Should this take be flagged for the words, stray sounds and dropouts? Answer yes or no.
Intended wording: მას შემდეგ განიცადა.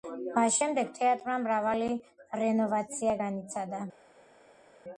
yes